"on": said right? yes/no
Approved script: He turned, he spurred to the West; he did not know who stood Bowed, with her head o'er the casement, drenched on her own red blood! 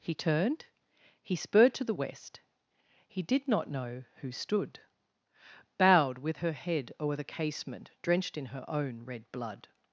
no